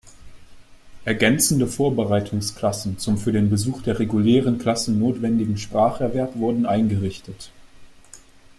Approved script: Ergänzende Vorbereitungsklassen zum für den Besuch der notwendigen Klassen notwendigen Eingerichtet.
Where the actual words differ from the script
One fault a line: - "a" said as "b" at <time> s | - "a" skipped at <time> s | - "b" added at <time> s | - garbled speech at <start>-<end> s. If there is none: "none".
- "notwendigen" said as "regulären" at 4.0 s
- "Spracherwerb wurden" added at 5.6 s